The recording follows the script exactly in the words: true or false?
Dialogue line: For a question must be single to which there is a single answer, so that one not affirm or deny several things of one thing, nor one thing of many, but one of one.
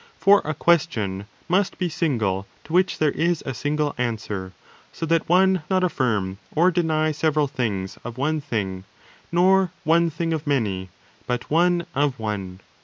true